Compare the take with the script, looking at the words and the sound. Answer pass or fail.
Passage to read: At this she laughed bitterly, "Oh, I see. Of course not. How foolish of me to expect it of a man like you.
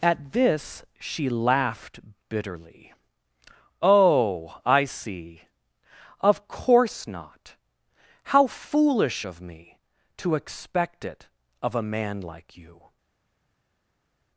pass